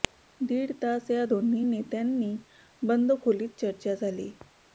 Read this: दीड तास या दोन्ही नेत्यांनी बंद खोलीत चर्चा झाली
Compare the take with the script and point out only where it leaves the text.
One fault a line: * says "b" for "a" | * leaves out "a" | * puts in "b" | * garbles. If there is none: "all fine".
all fine